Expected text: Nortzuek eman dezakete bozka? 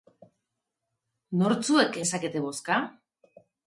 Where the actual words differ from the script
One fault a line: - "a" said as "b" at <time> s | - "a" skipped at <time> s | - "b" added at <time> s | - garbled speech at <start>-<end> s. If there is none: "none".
- "eman" skipped at 2.0 s